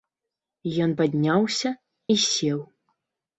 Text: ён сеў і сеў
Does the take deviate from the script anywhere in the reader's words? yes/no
yes